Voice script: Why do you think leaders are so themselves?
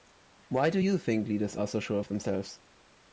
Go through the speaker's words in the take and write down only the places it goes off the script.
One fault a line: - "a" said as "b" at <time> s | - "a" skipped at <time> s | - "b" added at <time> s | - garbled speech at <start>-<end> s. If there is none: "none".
- "sure of" added at 1.8 s